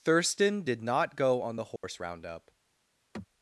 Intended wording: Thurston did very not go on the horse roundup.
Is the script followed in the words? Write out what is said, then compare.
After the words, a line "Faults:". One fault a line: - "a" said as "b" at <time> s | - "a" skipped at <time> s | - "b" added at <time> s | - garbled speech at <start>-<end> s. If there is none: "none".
Thurston did not go on the horse roundup.
Faults:
- "very" skipped at 0.8 s